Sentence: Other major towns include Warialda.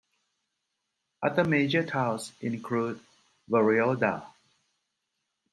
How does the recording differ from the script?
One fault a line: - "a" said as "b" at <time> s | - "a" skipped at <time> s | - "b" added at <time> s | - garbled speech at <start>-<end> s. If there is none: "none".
none